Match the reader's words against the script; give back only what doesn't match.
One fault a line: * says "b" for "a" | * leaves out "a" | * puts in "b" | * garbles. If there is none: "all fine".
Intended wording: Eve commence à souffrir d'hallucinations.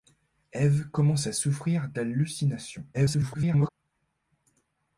* garbles